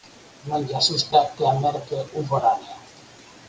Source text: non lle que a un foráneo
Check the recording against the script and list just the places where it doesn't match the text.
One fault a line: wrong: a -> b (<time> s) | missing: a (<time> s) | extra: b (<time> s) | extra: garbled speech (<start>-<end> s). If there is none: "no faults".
extra: asusta (0.8 s)
extra: merque (1.6 s)